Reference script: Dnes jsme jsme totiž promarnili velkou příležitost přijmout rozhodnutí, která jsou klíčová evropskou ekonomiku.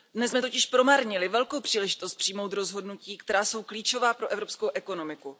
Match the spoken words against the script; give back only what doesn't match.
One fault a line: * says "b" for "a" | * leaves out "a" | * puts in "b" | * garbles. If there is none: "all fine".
* leaves out "jsme"
* puts in "pro"